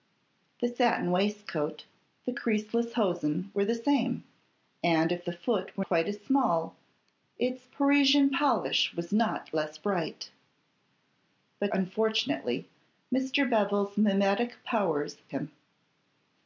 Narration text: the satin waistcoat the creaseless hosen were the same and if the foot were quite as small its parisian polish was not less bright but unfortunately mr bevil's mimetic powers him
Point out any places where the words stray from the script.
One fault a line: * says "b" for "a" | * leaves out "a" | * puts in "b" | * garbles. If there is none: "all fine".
all fine